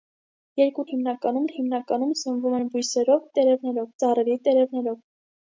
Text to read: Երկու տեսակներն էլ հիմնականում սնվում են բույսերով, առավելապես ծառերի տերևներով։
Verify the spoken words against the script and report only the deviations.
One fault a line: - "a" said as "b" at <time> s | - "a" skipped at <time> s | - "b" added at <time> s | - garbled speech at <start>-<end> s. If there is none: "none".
- "տեսակներն" said as "հիմնականում" at 0.9 s
- "առավելապես" said as "տերևներով" at 3.4 s